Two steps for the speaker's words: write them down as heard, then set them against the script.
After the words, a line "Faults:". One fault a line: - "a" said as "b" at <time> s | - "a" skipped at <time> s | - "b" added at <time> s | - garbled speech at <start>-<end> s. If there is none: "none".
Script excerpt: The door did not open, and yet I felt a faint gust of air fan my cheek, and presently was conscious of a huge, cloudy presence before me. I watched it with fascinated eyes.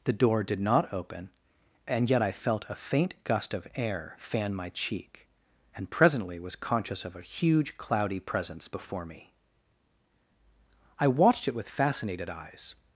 The door did not open, and yet I felt a faint gust of air fan my cheek, and presently was conscious of a huge, cloudy presence before me. I watched it with fascinated eyes.
Faults:
none